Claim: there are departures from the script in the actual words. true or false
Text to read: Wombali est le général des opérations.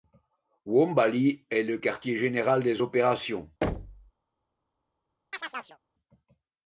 true